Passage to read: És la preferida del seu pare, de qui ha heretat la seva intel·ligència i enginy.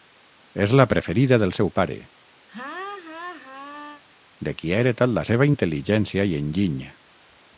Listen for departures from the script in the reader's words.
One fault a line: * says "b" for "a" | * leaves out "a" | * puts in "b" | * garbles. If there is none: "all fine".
all fine